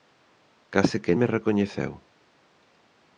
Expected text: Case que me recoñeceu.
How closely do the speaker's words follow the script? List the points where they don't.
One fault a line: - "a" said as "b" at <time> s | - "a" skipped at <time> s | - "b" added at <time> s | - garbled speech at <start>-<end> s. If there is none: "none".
none